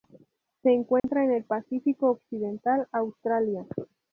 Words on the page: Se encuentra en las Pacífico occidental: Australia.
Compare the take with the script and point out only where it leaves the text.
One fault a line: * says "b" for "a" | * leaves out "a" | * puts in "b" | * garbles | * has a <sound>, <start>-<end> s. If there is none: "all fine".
* has a dropout, 1.0-1.0 s
* says "el" for "las"